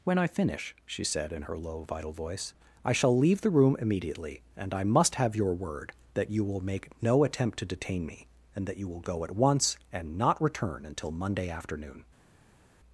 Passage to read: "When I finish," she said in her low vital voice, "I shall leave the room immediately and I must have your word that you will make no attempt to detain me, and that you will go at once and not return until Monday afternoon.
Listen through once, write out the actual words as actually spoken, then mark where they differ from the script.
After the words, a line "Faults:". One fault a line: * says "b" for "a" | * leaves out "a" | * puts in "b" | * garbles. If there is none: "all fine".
"When I finish," she said in her low vital voice, "I shall leave the room immediately and I must have your word that you will make no attempt to detain me, and that you will go at once and not return until Monday afternoon.
Faults:
all fine